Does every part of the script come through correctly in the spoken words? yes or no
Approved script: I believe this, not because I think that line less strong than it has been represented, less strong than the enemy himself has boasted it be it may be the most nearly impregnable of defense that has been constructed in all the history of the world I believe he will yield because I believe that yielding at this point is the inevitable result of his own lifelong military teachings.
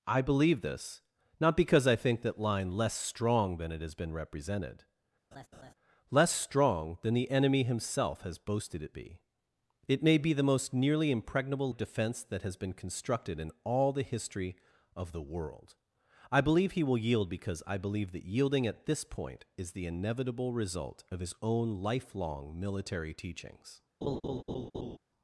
yes